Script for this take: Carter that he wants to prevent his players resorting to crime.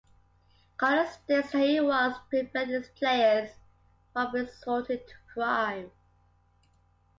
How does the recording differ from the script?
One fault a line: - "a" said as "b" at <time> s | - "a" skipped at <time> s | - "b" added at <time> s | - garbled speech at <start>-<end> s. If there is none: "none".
- "states" added at 1.1 s
- "from" added at 4.1 s